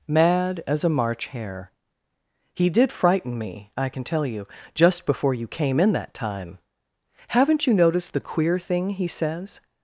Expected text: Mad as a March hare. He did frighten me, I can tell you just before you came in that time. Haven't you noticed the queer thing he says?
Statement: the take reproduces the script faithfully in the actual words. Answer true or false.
true